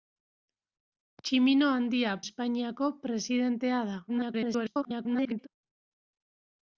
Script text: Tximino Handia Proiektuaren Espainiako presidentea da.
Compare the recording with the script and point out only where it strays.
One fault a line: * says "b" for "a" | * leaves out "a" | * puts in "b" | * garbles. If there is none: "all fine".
* leaves out "Proiektuaren"
* garbles